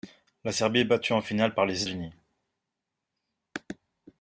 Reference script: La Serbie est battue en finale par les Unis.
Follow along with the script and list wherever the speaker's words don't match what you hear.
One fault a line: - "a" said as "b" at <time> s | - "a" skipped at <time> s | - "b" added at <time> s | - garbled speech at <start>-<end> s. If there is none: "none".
none